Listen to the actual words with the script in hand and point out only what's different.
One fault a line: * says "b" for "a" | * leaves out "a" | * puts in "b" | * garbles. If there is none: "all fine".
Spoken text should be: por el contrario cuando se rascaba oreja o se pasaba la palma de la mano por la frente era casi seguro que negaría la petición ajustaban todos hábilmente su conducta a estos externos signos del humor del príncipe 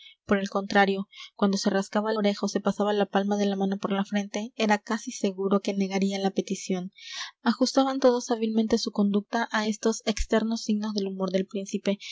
all fine